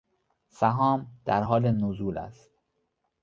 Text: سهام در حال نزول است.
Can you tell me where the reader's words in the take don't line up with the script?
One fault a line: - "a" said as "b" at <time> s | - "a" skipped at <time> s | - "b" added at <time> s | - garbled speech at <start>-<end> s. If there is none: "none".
none